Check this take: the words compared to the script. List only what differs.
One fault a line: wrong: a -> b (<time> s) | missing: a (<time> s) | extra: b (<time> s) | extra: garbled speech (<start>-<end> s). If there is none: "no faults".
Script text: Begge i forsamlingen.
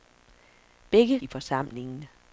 no faults